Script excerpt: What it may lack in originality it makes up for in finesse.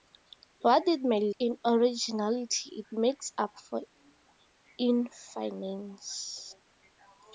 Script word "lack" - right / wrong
wrong